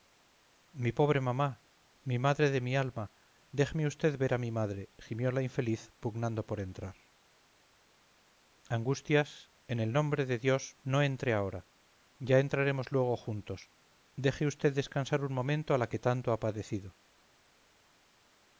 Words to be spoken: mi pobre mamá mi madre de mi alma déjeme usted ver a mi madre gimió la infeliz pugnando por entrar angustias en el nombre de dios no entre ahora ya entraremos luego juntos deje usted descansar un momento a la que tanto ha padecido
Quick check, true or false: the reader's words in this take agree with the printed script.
true